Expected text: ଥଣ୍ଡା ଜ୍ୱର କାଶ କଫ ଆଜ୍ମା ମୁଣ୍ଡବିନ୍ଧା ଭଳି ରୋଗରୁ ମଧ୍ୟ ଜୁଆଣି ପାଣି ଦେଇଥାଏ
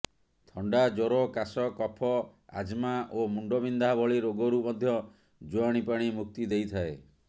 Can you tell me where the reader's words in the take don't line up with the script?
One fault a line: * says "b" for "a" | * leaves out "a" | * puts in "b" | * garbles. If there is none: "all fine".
* puts in "ଓ"
* puts in "ମୁକ୍ତି"